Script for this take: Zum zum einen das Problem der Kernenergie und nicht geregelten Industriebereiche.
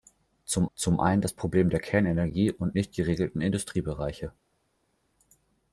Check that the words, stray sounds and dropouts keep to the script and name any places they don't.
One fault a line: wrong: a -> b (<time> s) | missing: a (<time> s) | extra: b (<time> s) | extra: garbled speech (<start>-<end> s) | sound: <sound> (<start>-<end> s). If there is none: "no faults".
no faults